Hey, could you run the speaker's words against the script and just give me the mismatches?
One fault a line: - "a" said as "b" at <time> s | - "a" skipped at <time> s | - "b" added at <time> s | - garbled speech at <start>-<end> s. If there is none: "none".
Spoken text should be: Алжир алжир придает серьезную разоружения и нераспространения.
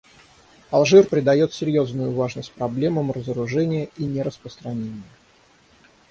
- "алжир" skipped at 1.1 s
- "важность проблемам" added at 2.1 s